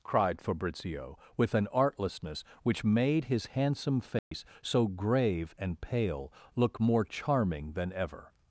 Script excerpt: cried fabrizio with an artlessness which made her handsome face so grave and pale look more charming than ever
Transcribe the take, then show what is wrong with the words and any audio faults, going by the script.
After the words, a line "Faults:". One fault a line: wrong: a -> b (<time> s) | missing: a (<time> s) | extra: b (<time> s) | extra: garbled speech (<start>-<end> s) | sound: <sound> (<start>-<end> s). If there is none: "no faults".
cried fabrizio with an artlessness which made his handsome face so grave and pale look more charming than ever
Faults:
wrong: her -> his (3.2 s)
sound: dropout (4.2-4.3 s)